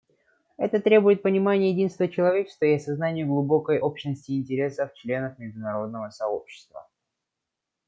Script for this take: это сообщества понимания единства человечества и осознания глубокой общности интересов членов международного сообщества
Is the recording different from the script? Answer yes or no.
yes